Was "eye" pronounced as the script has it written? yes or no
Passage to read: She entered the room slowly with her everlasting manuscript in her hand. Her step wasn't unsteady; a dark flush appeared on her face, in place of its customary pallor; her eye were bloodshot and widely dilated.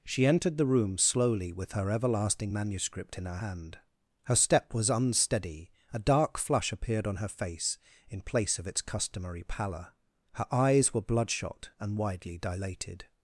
no